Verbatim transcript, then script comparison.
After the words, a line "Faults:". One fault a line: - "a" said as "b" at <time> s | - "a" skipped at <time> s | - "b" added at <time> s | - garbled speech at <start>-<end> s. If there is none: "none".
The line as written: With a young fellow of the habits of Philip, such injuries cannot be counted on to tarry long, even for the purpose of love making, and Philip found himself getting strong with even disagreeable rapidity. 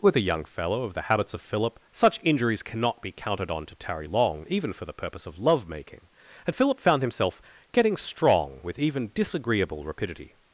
With a young fellow of the habits of Philip, such injuries cannot be counted on to tarry long, even for the purpose of love making, and Philip found himself getting strong with even disagreeable rapidity.
Faults:
none